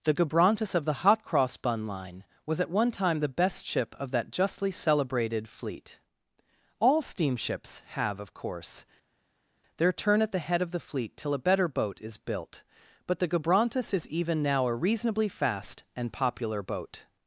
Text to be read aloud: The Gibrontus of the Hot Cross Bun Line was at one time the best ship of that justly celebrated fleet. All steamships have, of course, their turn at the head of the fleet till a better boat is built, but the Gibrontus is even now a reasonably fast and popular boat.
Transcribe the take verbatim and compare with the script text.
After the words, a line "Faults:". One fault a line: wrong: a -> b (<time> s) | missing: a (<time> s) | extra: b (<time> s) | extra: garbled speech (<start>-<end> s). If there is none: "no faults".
The Gibrontus of the Hot Cross Bun Line was at one time the best ship of that justly celebrated fleet. All steamships have, of course, their turn at the head of the fleet till a better boat is built, but the Gibrontus is even now a reasonably fast and popular boat.
Faults:
no faults